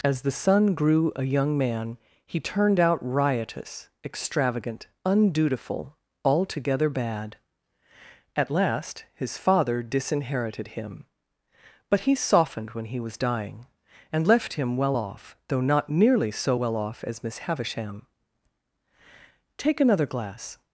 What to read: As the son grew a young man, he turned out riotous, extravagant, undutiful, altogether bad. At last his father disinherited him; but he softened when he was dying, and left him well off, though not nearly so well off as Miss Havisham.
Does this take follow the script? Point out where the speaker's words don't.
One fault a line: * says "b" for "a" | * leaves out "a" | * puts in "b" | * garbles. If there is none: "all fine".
* puts in "Take another glass"